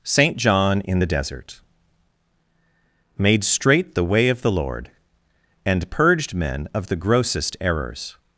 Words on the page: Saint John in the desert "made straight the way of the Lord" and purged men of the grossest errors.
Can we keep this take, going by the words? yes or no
yes